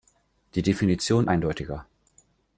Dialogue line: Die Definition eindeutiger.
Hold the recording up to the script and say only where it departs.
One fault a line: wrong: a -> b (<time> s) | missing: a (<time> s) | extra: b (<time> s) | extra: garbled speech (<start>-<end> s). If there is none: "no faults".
no faults